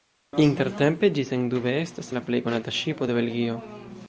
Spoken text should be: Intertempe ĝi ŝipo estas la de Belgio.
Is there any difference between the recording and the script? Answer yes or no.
yes